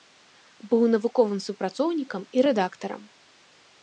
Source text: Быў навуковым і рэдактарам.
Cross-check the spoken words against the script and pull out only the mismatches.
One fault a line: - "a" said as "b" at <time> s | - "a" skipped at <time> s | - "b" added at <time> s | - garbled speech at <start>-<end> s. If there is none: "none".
- "супрацоўнікам" added at 1.5 s